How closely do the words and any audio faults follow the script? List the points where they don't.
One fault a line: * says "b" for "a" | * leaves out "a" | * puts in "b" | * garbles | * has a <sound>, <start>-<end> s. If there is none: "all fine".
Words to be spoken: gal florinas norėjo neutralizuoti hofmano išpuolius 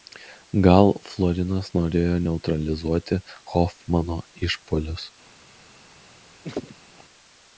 * has a laugh, 6.4-7.0 s